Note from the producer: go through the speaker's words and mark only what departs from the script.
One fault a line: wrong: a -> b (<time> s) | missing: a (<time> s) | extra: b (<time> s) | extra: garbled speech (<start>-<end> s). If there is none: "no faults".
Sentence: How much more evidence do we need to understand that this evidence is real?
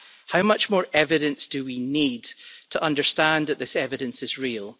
no faults